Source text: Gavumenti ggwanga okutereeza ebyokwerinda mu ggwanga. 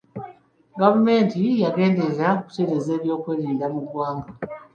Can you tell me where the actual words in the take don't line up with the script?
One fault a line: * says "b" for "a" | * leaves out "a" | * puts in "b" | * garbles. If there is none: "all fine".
* says "yagenderera" for "ggwanga"